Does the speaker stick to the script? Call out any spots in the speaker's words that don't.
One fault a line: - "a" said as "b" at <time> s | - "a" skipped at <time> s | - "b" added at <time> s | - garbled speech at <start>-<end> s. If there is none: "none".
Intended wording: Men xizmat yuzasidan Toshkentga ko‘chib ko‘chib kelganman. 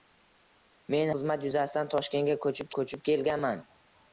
none